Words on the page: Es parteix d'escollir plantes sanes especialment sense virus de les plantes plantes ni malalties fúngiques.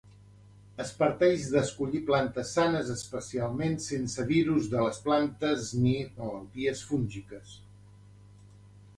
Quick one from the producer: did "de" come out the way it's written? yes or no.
yes